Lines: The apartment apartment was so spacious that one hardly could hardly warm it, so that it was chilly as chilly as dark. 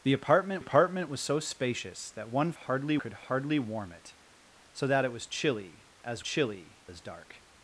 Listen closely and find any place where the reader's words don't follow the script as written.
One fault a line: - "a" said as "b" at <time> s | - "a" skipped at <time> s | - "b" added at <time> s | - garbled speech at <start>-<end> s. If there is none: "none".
none